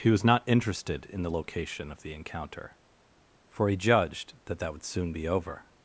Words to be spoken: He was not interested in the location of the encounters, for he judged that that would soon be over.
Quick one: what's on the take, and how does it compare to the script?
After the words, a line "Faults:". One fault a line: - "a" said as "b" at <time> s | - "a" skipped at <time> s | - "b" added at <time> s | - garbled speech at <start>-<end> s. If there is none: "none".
He was not interested in the location of the encounter, for he judged that that would soon be over.
Faults:
- "encounters" said as "encounter" at 2.1 s